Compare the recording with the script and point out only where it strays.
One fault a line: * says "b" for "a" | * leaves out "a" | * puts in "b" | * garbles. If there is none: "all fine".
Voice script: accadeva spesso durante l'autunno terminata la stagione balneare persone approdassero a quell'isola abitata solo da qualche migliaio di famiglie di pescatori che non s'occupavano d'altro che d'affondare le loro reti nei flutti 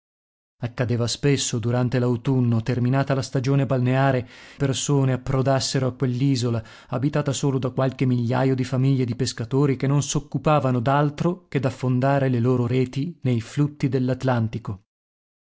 all fine